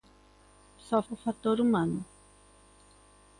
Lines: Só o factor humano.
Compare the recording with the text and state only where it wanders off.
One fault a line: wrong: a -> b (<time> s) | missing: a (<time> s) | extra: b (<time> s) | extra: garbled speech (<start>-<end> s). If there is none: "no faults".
no faults